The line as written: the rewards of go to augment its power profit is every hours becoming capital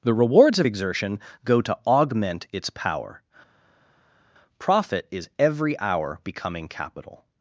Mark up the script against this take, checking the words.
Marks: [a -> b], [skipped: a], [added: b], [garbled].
the rewards of [added: exertion] go to augment its power profit is every [hours -> hour] becoming capital